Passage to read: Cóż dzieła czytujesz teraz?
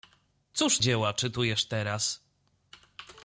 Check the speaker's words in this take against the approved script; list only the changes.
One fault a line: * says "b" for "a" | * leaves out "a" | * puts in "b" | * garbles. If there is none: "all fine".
all fine